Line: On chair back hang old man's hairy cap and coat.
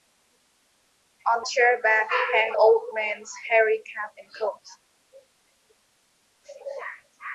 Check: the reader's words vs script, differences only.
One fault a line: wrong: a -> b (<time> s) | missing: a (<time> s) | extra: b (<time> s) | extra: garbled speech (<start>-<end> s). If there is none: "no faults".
no faults